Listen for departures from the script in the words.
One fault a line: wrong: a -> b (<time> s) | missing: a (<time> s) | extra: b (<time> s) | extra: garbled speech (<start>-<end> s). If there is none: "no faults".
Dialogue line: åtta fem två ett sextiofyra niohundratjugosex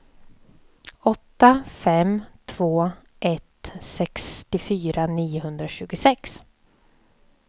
no faults